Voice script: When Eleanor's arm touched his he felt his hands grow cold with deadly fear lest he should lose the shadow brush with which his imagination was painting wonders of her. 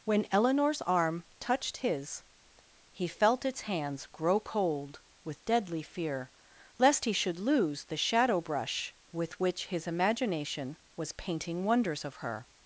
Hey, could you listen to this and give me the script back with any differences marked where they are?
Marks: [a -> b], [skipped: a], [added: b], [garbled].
When Eleanor's arm touched his he felt [his -> its] hands grow cold with deadly fear lest he should lose the shadow brush with which his imagination was painting wonders of her.